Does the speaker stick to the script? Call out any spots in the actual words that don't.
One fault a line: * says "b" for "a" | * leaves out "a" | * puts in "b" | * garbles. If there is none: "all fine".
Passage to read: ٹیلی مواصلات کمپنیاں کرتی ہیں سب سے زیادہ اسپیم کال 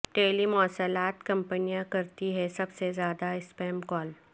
all fine